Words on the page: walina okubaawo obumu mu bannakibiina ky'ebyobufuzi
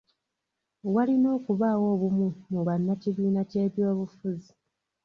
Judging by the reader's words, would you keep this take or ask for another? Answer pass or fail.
pass